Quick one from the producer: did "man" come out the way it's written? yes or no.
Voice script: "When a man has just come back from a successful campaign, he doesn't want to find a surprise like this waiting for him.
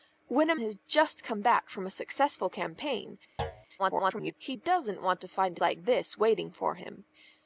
no